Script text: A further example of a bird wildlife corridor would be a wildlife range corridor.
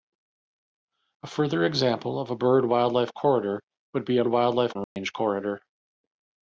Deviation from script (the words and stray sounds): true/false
true